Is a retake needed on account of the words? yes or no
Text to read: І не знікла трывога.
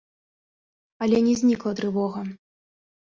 yes